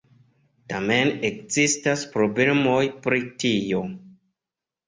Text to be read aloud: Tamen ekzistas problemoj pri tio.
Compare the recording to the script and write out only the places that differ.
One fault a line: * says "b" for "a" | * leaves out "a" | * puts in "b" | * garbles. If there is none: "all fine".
all fine